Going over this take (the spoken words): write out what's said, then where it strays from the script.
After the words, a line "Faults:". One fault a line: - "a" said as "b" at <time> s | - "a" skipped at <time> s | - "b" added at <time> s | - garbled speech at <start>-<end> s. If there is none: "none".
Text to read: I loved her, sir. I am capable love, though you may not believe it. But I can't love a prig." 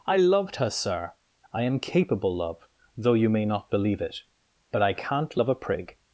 I loved her, sir. I am capable love, though you may not believe it. But I can't love a prig."
Faults:
none